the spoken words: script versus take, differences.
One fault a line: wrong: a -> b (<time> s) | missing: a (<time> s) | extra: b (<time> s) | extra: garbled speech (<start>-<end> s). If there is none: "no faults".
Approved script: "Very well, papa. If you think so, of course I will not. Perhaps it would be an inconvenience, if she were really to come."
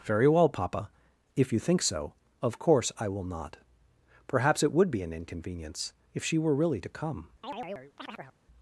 no faults